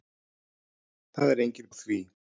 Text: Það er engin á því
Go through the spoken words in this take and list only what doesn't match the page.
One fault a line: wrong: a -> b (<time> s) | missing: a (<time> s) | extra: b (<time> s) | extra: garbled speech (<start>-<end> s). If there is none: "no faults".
no faults